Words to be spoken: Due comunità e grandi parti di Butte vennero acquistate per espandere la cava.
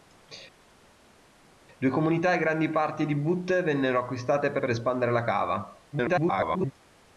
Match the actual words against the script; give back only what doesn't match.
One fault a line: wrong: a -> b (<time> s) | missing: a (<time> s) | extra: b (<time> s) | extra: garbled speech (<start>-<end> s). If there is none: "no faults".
extra: per (4.6 s)
extra: garbled speech (5.9-6.7 s)